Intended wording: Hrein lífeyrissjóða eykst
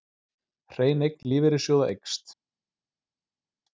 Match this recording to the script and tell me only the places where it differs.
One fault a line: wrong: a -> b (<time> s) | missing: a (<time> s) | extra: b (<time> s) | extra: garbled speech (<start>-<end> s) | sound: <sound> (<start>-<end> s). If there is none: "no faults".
extra: eign (1.1 s)